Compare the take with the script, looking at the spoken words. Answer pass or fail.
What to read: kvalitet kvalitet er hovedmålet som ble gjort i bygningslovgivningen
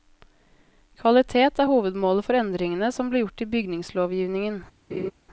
fail